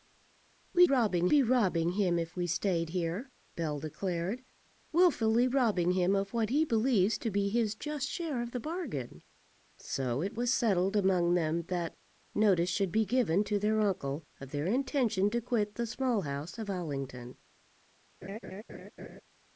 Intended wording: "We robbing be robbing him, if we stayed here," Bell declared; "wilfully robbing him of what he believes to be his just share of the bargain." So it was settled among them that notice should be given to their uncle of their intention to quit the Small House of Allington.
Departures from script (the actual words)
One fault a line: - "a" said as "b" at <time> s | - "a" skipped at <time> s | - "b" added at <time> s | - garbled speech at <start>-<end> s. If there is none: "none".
none